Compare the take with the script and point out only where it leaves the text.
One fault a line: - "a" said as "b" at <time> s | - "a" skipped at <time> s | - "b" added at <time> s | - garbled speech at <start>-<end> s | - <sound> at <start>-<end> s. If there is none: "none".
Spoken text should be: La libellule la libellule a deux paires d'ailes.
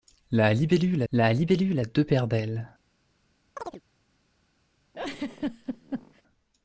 - chirp at 3.6-3.8 s
- laugh at 4.9-6.2 s